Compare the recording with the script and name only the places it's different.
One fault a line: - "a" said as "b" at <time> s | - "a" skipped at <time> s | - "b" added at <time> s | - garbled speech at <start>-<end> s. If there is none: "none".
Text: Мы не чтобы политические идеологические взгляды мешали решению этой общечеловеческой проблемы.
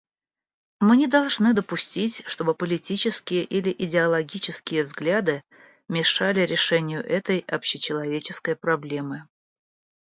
- "должны допустить" added at 1.1 s
- "или" added at 3.4 s